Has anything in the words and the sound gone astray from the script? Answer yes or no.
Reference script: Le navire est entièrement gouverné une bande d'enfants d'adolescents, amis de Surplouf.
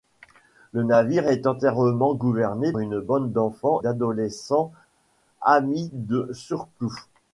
no